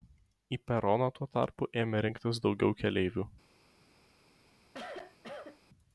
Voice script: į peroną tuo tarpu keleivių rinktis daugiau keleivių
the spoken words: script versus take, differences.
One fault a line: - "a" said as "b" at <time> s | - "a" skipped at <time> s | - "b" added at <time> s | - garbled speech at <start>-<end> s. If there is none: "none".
- "keleivių" said as "ėmė" at 1.9 s